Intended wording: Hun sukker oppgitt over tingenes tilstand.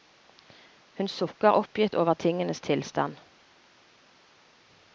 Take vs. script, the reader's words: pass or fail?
pass